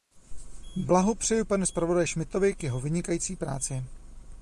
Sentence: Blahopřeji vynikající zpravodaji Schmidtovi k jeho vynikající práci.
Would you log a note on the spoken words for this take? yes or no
yes